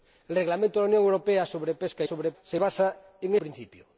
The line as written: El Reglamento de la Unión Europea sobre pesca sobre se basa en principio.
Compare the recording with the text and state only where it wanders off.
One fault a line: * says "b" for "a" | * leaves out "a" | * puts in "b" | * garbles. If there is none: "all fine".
all fine